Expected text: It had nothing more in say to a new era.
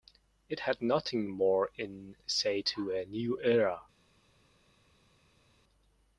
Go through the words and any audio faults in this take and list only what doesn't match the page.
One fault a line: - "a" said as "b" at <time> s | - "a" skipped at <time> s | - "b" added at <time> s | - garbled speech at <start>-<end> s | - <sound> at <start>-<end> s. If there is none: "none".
none